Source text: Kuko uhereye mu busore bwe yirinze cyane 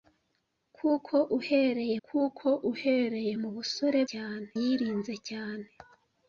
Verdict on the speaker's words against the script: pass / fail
fail